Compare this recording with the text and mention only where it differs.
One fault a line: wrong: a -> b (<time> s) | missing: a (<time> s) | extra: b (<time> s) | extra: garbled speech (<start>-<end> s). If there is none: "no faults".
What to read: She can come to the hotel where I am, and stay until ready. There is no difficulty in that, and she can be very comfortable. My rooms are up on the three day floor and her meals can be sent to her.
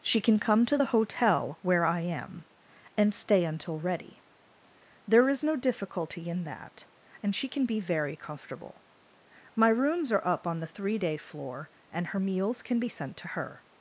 no faults